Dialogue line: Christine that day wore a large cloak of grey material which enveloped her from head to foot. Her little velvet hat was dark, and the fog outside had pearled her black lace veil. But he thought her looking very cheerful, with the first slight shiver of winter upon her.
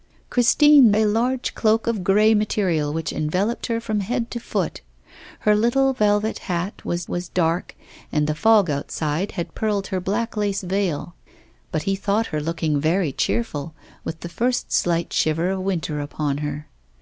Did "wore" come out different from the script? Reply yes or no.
yes